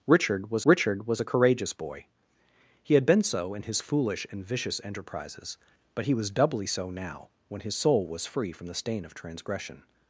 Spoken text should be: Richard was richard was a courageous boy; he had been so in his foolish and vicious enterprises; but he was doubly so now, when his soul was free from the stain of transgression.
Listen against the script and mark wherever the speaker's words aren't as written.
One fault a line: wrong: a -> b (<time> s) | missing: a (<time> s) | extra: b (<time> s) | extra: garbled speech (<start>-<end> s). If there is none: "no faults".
no faults